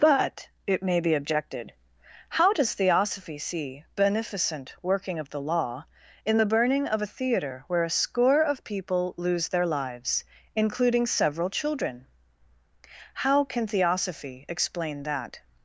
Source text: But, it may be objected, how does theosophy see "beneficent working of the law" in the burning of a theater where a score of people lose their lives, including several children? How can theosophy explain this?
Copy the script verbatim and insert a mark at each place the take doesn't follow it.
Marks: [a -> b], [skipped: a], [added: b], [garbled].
But, it may be objected, how does theosophy see "beneficent working of the law" in the burning of a theater where a score of people lose their lives, including several children? How can theosophy explain [this? -> that]